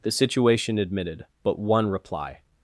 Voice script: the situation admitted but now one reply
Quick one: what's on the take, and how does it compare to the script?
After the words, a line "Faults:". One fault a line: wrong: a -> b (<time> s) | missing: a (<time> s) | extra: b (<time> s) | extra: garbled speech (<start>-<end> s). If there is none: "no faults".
the situation admitted but one reply
Faults:
missing: now (1.6 s)